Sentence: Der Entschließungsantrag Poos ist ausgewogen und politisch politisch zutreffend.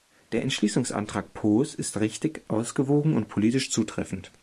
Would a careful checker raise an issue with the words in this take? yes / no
yes